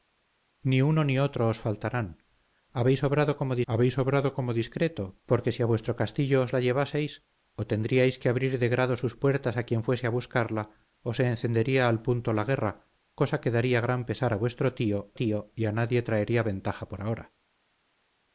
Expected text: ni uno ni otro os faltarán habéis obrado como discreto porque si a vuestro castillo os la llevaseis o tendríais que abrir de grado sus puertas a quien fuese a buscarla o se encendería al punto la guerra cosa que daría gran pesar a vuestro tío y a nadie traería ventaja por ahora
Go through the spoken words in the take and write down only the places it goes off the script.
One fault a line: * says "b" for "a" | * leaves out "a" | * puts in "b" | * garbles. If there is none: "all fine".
* puts in "habéis obrado como"
* puts in "tío"